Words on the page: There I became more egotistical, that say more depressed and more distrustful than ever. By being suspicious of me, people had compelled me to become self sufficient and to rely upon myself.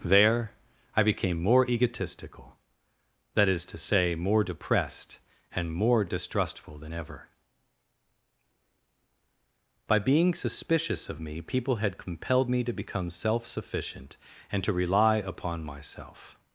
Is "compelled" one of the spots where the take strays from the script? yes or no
no